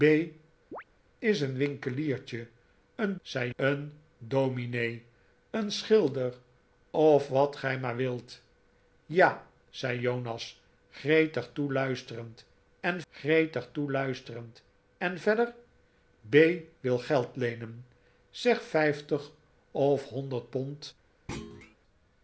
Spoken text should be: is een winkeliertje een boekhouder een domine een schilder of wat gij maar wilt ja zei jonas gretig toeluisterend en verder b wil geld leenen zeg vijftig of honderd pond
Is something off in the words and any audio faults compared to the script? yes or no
yes